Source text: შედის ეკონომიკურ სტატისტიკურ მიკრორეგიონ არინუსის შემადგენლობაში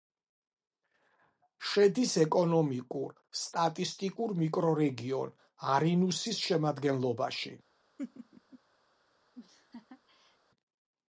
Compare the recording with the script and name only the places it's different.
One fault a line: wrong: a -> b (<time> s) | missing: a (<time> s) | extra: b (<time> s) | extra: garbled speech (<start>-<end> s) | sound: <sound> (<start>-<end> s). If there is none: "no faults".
sound: laugh (8.0-8.6 s)
sound: laugh (9.3-10.4 s)